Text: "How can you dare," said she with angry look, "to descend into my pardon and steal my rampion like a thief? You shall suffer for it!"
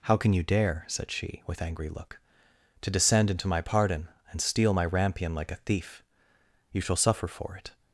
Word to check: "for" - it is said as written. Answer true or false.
true